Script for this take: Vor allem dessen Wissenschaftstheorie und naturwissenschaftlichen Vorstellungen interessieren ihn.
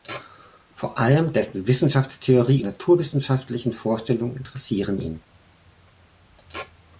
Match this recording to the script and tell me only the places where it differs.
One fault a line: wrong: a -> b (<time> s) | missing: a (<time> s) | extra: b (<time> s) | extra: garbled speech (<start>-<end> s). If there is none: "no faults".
missing: und (2.6 s)